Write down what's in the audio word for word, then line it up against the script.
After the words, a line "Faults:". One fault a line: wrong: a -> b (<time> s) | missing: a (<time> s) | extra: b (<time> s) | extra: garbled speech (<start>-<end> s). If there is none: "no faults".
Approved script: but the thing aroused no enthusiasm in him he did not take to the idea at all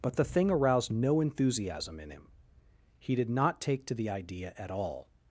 but the thing aroused no enthusiasm in him he did not take to the idea at all
Faults:
no faults